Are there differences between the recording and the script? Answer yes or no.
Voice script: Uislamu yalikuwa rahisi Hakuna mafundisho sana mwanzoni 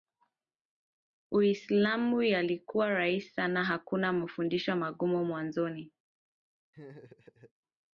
yes